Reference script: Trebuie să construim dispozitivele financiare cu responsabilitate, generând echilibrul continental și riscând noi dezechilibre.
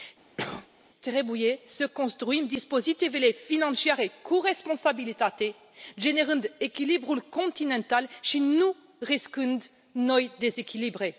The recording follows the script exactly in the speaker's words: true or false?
false